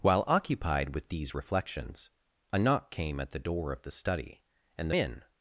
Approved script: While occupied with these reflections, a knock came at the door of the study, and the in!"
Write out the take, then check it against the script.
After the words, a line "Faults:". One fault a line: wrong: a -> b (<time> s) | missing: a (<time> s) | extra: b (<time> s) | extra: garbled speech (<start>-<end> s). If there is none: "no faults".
While occupied with these reflections, a knock came at the door of the study, and the in!"
Faults:
no faults